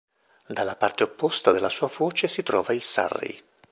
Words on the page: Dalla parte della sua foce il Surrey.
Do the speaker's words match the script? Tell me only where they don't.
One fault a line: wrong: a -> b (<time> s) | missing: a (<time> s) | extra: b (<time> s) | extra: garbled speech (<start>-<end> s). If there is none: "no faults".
extra: opposta (1.0 s)
extra: si trova (2.3 s)